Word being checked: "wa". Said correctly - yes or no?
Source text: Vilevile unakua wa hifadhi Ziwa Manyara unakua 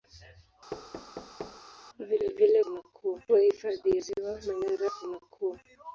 yes